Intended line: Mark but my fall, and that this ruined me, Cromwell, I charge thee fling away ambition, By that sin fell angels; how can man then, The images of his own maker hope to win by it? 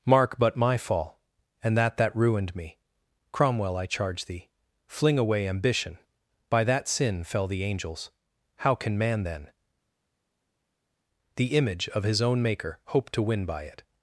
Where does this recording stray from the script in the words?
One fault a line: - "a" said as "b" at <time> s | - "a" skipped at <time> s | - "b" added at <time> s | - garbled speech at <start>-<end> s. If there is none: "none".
- "this" said as "that" at 2.0 s
- "the" added at 7.5 s
- "images" said as "image" at 11.6 s